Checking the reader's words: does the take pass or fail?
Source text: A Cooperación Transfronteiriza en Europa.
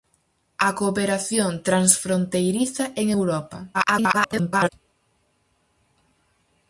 fail